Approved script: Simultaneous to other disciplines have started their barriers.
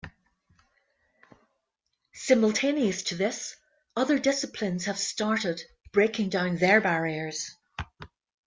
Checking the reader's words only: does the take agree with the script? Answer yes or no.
no